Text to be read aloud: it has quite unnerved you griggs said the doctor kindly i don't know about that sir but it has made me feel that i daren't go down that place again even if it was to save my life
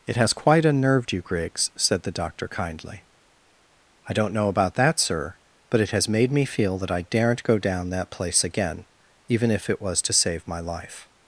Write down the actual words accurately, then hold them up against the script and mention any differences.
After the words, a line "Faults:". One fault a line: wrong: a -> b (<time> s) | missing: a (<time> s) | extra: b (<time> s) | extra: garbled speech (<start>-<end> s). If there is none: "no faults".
it has quite unnerved you griggs said the doctor kindly i don't know about that sir but it has made me feel that i daren't go down that place again even if it was to save my life
Faults:
no faults